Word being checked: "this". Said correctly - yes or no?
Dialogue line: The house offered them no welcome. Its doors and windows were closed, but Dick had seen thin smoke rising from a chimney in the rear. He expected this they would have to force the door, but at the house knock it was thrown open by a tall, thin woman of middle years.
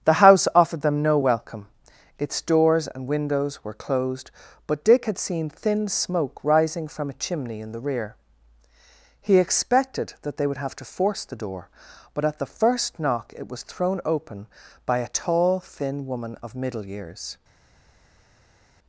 no